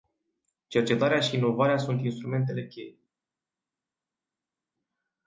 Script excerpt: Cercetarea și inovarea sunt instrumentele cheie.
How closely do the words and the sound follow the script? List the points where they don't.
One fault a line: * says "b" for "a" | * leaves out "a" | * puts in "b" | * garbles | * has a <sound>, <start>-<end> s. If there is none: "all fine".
all fine